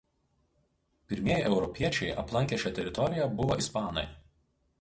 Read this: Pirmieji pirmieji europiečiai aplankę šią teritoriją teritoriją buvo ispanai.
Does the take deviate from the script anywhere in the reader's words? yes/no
yes